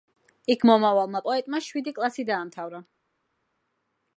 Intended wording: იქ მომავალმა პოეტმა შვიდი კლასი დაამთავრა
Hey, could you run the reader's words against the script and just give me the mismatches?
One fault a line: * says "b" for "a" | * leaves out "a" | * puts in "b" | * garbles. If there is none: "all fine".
all fine